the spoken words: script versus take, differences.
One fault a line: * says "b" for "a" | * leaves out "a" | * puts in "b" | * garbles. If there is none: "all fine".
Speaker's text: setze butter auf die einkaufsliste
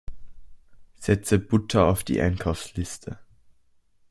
all fine